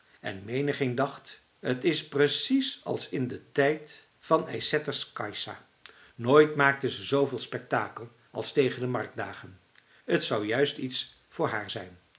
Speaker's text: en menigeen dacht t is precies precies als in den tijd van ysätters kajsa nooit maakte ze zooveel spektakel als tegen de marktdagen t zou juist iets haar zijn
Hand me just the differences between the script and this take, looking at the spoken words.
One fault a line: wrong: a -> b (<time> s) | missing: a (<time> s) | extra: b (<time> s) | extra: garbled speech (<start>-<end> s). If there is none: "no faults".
missing: precies (2.8 s)
extra: voor (11.3 s)